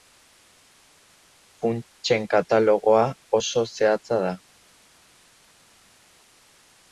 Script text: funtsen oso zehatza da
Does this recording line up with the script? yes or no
no